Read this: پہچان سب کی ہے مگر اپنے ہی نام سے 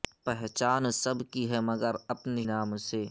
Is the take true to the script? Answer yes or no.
no